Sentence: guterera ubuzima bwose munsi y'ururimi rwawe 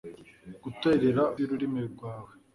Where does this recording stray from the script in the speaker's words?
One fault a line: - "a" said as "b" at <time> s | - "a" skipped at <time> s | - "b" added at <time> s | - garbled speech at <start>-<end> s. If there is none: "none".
- "ubuzima bwose munsi" skipped at 1.2 s